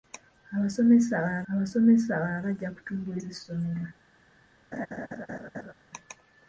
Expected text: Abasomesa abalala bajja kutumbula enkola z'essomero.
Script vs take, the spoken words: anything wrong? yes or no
yes